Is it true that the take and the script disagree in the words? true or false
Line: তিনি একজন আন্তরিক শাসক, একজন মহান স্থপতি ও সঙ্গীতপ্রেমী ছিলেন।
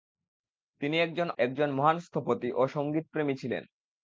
true